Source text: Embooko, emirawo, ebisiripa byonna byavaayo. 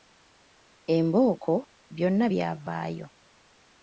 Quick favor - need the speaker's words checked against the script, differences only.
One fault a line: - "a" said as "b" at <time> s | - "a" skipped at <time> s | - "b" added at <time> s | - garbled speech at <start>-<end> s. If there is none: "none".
- "emirawo ebisiripa" skipped at 1.6 s